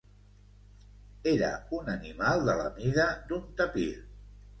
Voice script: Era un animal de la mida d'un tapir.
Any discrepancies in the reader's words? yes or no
no